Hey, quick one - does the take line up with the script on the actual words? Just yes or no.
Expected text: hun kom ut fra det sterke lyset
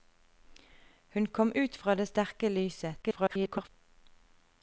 no